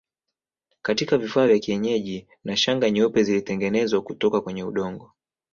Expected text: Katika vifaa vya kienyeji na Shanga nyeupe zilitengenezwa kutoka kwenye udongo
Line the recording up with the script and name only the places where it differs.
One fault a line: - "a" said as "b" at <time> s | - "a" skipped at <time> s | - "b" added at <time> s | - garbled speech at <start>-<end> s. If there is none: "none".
none